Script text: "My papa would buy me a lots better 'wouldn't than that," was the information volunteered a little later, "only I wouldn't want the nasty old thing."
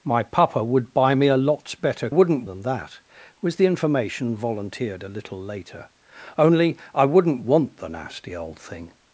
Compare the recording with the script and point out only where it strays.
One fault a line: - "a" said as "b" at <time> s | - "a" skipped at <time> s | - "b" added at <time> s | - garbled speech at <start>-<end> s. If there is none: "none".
none